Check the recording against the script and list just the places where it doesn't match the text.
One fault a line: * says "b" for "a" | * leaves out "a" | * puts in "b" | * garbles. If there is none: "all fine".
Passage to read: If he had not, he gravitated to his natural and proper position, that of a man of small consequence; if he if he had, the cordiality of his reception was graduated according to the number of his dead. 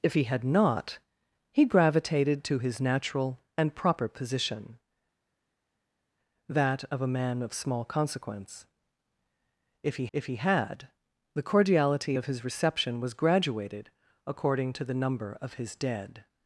all fine